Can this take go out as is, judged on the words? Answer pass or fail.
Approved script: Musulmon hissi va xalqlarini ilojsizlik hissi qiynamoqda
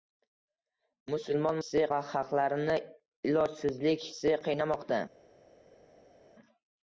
pass